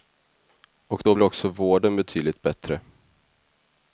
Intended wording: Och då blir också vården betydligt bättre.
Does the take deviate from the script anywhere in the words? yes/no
no